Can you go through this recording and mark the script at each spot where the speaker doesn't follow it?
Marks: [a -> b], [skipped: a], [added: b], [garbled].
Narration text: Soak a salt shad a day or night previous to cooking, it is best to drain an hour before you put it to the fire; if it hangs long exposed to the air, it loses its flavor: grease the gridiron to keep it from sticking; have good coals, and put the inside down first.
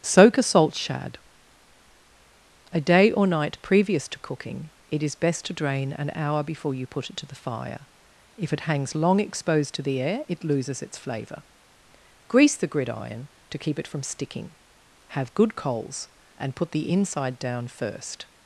Soak a salt shad a day or night previous to cooking, it is best to drain an hour before you put it to the fire; if it hangs long exposed to the air, it loses its flavor: grease the gridiron to keep it from sticking; have good coals, and put the inside down first.